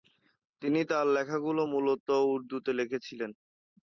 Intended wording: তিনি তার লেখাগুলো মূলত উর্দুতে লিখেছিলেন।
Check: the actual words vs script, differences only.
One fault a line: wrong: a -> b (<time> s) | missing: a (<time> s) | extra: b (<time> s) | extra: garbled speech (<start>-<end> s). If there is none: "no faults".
no faults